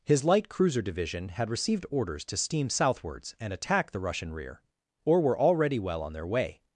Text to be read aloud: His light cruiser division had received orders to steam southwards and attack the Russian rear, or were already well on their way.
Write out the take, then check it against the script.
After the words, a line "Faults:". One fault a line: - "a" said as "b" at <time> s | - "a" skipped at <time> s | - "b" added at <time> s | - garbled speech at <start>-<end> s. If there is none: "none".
His light cruiser division had received orders to steam southwards and attack the Russian rear, or were already well on their way.
Faults:
none